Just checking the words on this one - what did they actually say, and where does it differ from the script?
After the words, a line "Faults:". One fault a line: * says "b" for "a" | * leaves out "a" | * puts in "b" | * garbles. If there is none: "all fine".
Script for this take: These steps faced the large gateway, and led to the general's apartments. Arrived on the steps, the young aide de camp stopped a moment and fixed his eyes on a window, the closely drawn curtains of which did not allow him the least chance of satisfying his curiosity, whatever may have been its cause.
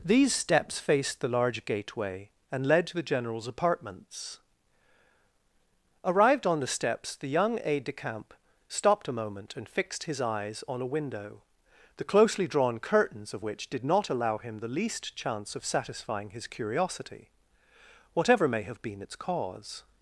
These steps faced the large gateway, and led to the general's apartments. Arrived on the steps, the young aide de camp stopped a moment and fixed his eyes on a window, the closely drawn curtains of which did not allow him the least chance of satisfying his curiosity, whatever may have been its cause.
Faults:
all fine